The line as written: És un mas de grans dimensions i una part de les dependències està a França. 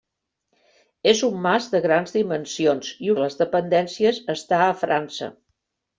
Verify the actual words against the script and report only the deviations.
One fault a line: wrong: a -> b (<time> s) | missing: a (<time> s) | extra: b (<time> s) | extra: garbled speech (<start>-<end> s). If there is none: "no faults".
missing: una part (3.1 s)